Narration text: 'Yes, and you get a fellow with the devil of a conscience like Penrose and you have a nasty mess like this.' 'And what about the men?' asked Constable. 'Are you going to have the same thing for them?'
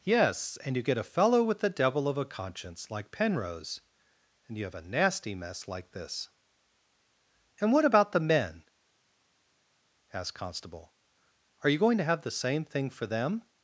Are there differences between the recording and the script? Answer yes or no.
no